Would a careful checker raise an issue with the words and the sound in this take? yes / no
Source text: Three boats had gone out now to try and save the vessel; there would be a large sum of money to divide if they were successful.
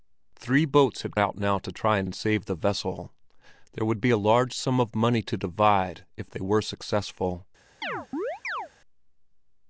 yes